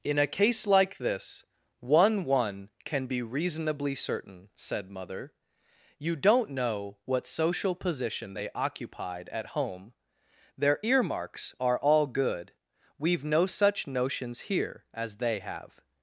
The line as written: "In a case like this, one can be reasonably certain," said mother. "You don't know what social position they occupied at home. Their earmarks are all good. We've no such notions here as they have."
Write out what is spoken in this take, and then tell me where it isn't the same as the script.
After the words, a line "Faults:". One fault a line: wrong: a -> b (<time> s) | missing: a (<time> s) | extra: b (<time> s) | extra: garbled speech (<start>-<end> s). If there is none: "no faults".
"In a case like this, one one can be reasonably certain," said mother. "You don't know what social position they occupied at home. Their earmarks are all good. We've no such notions here as they have."
Faults:
extra: one (2.2 s)